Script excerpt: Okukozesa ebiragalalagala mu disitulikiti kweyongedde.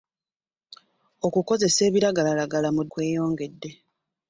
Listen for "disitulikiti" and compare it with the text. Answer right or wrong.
wrong